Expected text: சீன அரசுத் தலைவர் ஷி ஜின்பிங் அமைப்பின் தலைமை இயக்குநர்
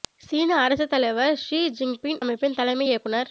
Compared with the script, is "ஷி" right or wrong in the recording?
right